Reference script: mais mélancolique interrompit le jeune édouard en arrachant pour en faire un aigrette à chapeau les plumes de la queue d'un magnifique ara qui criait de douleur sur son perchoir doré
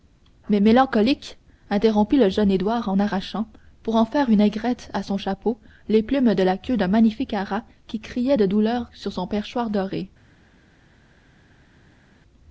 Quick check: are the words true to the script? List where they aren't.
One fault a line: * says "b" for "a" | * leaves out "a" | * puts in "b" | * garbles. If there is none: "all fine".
* says "une" for "un"
* puts in "son"